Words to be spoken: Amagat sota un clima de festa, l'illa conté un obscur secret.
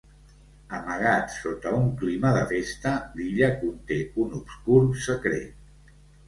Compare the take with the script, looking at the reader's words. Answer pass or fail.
pass